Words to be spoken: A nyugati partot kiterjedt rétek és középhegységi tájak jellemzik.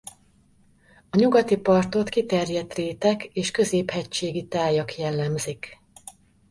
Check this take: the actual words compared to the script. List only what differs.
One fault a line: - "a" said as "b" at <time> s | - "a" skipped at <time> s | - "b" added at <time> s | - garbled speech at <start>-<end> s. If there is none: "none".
none